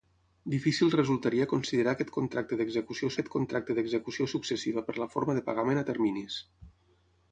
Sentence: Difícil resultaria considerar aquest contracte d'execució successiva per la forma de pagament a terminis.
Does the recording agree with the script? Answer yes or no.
no